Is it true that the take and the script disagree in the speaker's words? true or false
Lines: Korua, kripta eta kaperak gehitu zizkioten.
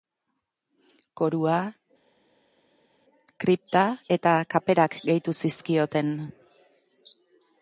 false